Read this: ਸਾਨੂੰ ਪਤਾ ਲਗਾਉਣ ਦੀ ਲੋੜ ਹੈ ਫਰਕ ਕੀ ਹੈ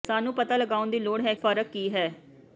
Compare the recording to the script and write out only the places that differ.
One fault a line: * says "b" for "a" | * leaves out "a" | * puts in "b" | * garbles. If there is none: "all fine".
all fine